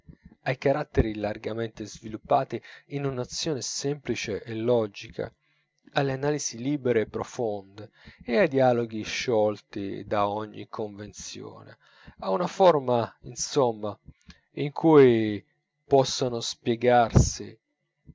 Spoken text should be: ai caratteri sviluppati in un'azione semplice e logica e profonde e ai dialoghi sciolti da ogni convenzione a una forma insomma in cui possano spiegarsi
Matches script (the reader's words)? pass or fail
fail